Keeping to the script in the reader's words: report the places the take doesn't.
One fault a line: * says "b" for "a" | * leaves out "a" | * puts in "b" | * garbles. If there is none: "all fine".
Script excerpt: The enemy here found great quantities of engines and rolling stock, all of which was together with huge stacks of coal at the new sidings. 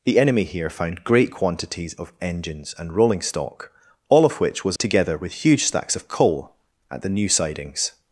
all fine